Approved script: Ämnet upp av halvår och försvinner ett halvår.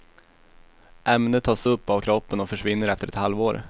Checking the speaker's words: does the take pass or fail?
fail